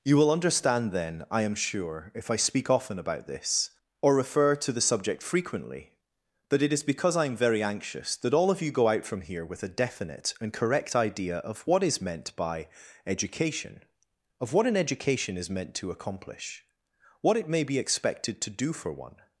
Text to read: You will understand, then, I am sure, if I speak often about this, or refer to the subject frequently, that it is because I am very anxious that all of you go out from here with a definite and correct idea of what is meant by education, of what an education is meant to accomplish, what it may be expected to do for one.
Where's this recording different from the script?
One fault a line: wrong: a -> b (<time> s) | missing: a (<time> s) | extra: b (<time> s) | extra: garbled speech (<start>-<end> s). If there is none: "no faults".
no faults